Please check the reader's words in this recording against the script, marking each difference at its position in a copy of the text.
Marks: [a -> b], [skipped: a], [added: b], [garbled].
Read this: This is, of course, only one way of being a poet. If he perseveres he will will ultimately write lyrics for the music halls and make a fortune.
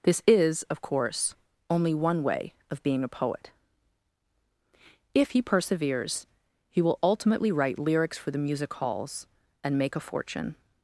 This is, of course, only one way of being a poet. If he perseveres he will [skipped: will] ultimately write lyrics for the music halls and make a fortune.